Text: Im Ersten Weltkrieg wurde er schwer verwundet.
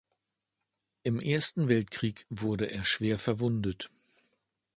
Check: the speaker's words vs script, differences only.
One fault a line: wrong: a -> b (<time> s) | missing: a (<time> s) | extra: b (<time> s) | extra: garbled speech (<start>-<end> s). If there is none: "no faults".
no faults